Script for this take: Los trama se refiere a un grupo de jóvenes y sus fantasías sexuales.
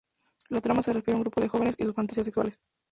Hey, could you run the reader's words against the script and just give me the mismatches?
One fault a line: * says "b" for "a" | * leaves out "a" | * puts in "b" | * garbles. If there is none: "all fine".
* says "La" for "Los"